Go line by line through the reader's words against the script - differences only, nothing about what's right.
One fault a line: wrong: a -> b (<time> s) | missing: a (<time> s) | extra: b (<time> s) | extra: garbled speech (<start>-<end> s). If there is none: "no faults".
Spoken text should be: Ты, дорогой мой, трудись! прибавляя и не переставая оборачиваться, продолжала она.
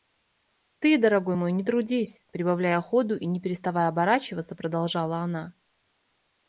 extra: не (1.5 s)
extra: ходу (2.8 s)